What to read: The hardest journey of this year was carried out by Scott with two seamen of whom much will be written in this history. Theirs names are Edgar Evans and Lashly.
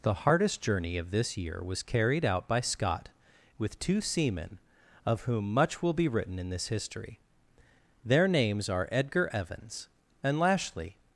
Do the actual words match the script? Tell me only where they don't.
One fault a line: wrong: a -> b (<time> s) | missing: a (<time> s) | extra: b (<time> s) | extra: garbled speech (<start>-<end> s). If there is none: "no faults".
wrong: Theirs -> Their (8.0 s)